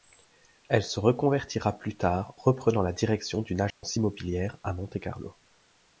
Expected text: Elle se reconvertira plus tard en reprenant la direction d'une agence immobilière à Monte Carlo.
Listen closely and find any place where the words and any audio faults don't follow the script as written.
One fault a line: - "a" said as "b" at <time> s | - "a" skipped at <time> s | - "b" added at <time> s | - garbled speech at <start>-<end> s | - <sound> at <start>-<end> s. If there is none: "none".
- "en" skipped at 2.3 s
- dropout at 3.7-3.8 s